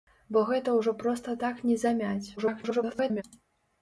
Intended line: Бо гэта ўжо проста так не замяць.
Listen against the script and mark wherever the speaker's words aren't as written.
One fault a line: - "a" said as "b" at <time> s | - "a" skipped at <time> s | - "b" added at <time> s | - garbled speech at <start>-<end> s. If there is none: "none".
- garbled speech at 2.4-3.2 s